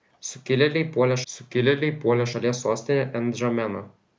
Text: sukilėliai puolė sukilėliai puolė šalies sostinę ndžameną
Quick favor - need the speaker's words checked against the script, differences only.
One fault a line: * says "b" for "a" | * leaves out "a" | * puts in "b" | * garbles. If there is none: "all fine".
all fine